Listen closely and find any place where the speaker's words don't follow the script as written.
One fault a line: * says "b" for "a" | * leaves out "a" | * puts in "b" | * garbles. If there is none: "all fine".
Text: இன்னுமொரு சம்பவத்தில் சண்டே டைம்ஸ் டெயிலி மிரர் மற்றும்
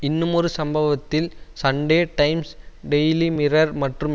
all fine